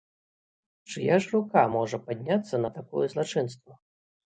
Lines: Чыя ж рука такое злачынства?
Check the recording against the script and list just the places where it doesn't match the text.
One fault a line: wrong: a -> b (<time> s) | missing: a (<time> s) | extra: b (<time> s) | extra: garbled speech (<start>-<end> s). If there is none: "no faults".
extra: можа падняцца на (1.8 s)